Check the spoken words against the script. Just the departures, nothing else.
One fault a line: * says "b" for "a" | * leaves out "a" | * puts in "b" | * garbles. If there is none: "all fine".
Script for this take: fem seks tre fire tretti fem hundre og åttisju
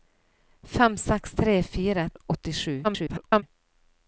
* leaves out "tretti fem hundre"
* garbles